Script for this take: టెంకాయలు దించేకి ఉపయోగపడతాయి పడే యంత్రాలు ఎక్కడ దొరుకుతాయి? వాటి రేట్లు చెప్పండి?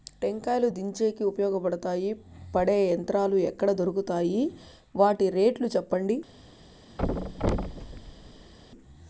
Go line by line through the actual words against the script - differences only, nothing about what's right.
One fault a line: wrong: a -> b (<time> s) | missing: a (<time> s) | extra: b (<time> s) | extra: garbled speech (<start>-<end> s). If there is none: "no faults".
no faults